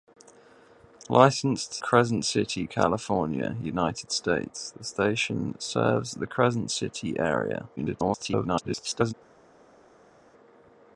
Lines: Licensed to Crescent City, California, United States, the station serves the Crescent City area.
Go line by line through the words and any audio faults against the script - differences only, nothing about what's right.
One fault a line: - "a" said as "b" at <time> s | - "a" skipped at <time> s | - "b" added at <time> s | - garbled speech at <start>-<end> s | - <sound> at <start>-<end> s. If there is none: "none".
- "to" skipped at 1.8 s
- garbled speech at 7.8-9.1 s